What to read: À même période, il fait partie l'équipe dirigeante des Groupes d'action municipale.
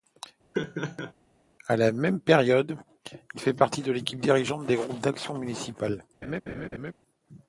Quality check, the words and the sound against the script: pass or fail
fail